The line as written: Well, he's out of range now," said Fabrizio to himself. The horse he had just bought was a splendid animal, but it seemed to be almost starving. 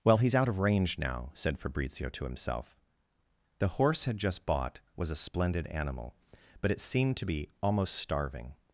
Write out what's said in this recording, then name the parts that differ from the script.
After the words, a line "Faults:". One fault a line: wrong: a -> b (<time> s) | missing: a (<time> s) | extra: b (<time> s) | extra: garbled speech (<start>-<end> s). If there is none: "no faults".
Well, he's out of range now," said Fabrizio to himself. The horse had just bought was a splendid animal, but it seemed to be almost starving.
Faults:
missing: he (4.0 s)